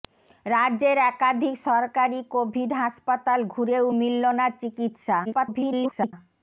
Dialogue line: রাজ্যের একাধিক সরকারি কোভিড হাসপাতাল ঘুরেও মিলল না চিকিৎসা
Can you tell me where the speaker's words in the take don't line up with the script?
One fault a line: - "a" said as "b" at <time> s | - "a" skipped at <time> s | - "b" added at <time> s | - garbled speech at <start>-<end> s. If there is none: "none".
- garbled speech at 5.2-6.1 s